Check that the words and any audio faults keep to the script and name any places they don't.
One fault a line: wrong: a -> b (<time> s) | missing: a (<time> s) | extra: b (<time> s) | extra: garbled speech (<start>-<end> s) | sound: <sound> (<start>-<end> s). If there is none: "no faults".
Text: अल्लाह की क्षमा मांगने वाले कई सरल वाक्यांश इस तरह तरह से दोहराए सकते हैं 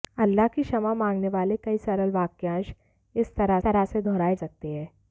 no faults